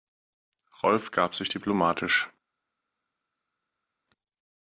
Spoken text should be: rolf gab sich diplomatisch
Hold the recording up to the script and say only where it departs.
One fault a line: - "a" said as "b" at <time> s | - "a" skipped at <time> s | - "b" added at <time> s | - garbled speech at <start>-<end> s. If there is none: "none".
none